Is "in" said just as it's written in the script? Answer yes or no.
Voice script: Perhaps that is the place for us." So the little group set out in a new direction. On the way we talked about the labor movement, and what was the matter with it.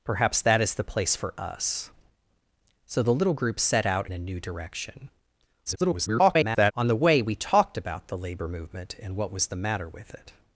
no